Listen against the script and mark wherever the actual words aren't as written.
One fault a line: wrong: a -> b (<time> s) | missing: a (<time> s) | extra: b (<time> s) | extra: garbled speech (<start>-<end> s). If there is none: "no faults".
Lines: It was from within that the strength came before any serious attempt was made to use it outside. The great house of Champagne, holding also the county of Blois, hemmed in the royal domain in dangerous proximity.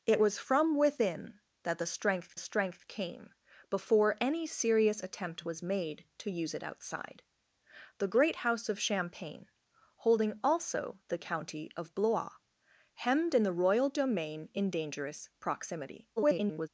extra: strength (2.4 s)
extra: garbled speech (16.2-16.7 s)